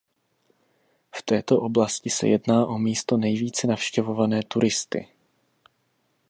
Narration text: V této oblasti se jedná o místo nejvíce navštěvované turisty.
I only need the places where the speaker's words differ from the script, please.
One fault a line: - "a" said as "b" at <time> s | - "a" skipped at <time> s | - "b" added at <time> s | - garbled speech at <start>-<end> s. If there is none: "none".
none